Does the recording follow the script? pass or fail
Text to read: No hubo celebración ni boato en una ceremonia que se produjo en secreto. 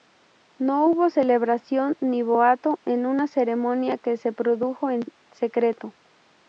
pass